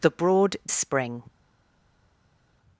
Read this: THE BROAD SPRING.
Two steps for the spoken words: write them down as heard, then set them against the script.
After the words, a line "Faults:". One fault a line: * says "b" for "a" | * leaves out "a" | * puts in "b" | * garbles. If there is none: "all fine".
THE BROAD SPRING.
Faults:
all fine